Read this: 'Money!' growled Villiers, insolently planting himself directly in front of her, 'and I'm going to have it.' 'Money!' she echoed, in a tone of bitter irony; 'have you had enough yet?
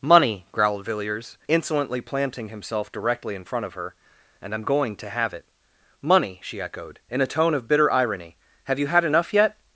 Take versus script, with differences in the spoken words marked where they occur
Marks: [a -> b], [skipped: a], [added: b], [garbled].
'Money!' growled Villiers, insolently planting himself directly in front of her, 'and I'm going to have it.' 'Money!' she echoed, in a tone of bitter irony; 'have you had enough yet?